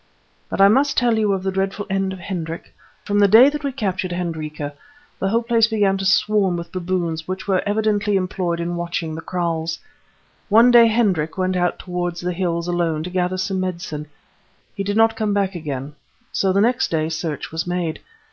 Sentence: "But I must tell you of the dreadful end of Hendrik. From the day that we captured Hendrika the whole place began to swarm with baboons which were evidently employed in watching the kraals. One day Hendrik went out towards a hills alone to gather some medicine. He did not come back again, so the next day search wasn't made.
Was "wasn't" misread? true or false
true